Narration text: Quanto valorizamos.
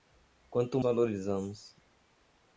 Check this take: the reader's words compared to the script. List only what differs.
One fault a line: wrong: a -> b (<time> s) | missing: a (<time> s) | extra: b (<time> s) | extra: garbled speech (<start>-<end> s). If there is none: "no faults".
no faults